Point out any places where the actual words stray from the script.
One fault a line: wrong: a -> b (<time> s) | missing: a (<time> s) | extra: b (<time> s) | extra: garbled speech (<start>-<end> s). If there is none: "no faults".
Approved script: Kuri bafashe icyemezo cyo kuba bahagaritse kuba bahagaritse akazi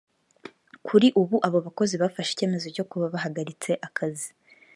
extra: ubu abo bakozi (1.2 s)
missing: kuba bahagaritse (3.7 s)